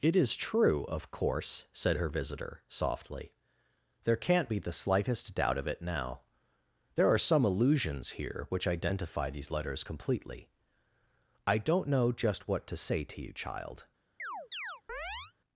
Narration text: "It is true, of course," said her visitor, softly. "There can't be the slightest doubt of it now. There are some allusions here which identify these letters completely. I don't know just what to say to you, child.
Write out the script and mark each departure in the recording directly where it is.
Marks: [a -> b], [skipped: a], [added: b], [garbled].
"It is true, of course," said her visitor, softly. "There can't be the slightest doubt of it now. There are some allusions here which identify these letters completely. I don't know just what to say to you, child.